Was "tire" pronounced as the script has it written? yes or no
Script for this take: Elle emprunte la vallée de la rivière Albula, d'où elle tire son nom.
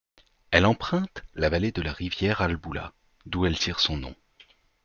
yes